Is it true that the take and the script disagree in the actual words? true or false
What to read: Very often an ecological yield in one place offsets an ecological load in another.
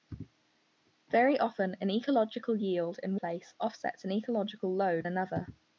true